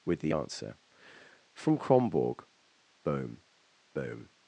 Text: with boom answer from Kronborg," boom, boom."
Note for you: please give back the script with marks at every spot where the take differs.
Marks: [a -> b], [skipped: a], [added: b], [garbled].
with [boom -> the] answer from Kronborg," boom, boom."